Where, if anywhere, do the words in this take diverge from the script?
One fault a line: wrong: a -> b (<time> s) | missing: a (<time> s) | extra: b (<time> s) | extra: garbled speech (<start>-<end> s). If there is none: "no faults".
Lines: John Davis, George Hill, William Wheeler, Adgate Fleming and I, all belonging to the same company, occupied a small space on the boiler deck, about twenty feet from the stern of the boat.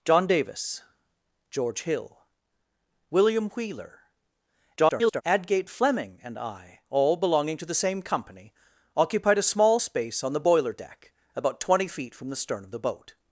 extra: garbled speech (4.8-5.2 s)